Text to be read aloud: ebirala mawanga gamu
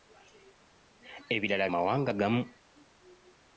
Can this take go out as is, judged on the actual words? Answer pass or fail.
pass